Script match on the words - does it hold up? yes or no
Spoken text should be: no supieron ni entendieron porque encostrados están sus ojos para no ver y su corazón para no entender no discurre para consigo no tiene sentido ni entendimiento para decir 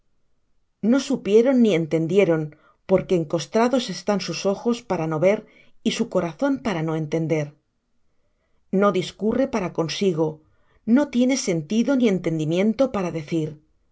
yes